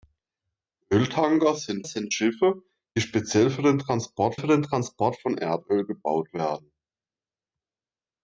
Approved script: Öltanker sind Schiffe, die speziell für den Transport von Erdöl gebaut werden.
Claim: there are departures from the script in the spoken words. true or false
true